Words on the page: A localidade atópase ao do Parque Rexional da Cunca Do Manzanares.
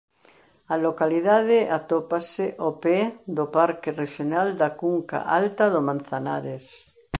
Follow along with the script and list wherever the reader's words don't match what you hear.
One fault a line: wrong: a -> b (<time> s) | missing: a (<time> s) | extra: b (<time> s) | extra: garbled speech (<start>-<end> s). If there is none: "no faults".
extra: pé (2.8 s)
extra: Alta (5.4 s)